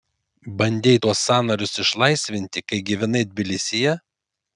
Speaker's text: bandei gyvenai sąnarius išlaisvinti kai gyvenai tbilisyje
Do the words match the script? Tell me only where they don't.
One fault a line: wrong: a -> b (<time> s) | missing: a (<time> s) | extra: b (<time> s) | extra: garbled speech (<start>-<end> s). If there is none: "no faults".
wrong: gyvenai -> tuos (1.0 s)